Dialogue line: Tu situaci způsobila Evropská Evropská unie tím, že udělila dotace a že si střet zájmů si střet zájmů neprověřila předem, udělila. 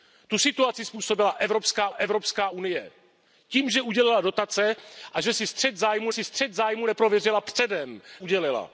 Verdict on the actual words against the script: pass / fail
pass